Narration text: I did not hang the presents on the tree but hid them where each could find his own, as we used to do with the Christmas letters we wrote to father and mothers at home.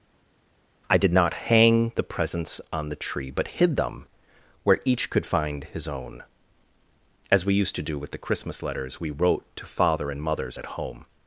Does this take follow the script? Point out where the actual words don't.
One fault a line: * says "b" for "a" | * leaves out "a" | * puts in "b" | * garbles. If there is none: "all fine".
all fine